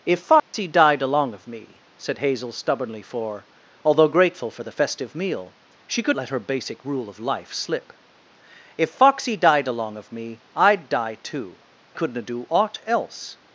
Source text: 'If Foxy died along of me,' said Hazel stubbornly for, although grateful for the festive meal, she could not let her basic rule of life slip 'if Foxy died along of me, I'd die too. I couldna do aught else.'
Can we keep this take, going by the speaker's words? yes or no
no